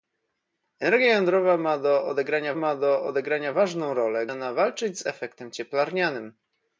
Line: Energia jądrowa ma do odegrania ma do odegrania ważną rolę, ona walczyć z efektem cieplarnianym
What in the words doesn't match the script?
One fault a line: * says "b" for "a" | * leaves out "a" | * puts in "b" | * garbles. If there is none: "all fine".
all fine